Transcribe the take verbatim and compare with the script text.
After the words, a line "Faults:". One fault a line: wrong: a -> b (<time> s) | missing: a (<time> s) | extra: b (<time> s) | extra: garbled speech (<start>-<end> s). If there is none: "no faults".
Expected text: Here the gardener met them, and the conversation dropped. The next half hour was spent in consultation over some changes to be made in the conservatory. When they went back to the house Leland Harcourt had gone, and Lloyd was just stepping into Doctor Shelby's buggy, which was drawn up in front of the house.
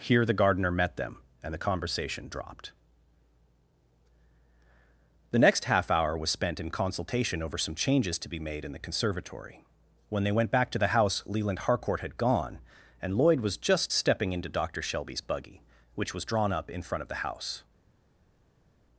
Here the gardener met them, and the conversation dropped. The next half hour was spent in consultation over some changes to be made in the conservatory. When they went back to the house Leland Harcourt had gone, and Lloyd was just stepping into Doctor Shelby's buggy, which was drawn up in front of the house.
Faults:
no faults